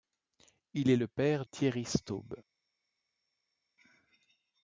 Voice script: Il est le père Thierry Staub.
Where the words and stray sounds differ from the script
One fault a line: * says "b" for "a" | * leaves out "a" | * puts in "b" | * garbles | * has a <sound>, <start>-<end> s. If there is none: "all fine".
all fine